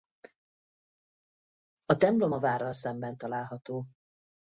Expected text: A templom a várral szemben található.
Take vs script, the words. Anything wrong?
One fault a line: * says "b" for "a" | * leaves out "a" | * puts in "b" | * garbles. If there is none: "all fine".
all fine